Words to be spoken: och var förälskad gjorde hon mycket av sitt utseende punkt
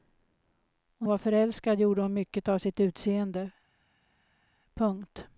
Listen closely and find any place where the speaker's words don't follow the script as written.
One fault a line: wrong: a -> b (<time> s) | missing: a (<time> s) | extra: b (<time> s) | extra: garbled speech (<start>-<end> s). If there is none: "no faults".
no faults